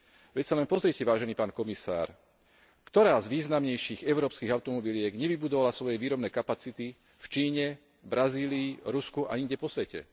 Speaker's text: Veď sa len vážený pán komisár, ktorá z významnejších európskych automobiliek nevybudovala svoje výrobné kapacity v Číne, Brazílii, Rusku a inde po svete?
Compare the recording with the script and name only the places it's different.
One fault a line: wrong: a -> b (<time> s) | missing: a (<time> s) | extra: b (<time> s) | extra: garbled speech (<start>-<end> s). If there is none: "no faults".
extra: pozrite (0.7 s)